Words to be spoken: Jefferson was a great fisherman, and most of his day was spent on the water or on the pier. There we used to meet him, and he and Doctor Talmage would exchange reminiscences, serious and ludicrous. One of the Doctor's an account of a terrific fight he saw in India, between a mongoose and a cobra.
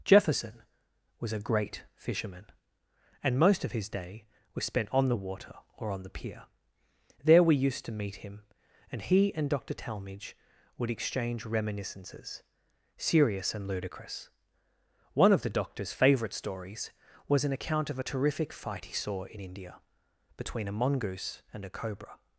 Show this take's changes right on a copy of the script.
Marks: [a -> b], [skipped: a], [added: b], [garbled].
Jefferson was a great fisherman, and most of his day was spent on the water or on the pier. There we used to meet him, and he and Doctor Talmage would exchange reminiscences, serious and ludicrous. One of the Doctor's [added: favourite stories was] an account of a terrific fight he saw in India, between a mongoose and a cobra.